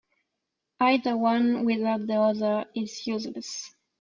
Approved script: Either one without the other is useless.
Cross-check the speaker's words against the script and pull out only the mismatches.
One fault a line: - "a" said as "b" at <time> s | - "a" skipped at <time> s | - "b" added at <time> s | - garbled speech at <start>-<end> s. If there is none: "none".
none